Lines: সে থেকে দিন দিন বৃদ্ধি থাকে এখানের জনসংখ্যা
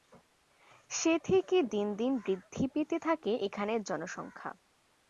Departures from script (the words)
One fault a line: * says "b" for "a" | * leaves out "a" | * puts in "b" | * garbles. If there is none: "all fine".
* puts in "পেতে"